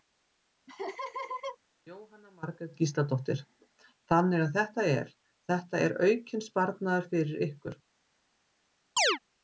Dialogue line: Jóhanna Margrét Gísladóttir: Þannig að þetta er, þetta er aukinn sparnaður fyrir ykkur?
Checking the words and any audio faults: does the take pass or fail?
fail